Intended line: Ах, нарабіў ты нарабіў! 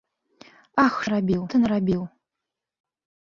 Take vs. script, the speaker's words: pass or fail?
pass